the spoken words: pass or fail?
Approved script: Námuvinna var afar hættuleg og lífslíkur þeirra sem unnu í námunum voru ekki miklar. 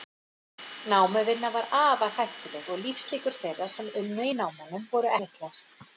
fail